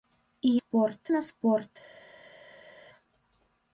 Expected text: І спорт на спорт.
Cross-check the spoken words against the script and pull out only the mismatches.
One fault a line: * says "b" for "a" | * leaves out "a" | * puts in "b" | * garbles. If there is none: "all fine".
all fine